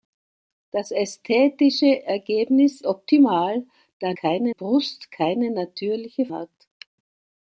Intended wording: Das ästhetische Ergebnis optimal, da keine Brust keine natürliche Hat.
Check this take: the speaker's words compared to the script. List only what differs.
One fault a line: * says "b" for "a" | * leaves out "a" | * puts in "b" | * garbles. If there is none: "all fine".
all fine